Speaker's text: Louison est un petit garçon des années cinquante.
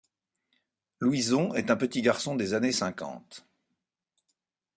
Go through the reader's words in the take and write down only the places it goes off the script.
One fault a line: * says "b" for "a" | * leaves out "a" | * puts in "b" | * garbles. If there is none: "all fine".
all fine